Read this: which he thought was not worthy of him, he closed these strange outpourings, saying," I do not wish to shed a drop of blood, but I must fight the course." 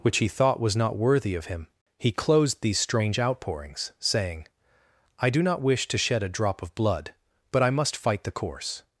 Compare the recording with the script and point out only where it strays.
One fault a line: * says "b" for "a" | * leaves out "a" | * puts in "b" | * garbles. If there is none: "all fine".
all fine